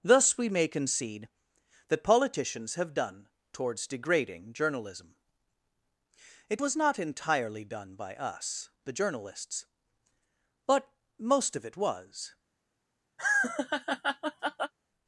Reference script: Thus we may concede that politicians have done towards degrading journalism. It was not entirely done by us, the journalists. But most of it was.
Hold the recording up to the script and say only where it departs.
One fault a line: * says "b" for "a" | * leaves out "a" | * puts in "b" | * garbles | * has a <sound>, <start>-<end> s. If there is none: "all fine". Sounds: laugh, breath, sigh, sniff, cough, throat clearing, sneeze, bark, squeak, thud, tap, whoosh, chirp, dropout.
* has a laugh, 13.2-14.7 s